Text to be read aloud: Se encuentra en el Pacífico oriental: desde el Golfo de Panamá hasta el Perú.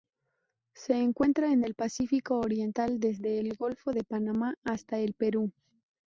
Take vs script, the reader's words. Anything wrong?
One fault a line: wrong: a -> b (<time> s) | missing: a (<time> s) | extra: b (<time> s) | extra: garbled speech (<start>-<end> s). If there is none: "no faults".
no faults